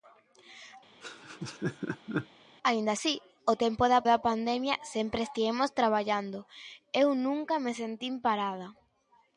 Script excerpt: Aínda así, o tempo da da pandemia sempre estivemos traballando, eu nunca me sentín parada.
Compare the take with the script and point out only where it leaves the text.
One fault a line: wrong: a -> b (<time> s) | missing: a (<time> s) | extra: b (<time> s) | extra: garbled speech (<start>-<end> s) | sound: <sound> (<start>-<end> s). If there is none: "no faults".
sound: laugh (1.0-2.3 s)